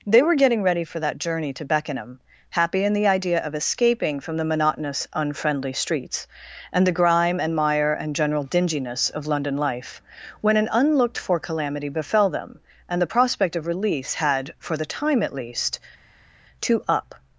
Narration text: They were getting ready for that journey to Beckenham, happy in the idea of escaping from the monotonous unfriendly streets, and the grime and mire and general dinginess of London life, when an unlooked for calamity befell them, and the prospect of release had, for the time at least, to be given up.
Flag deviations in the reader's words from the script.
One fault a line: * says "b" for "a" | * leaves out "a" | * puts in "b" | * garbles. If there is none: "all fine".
* leaves out "be given"